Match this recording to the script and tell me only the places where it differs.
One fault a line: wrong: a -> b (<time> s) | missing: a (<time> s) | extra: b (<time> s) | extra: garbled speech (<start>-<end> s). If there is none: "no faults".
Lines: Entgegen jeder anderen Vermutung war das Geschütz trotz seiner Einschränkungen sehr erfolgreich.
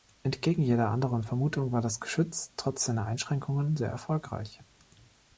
no faults